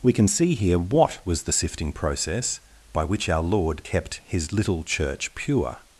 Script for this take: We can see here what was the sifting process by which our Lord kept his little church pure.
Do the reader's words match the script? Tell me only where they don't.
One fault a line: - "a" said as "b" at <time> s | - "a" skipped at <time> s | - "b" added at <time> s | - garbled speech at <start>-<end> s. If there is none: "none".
none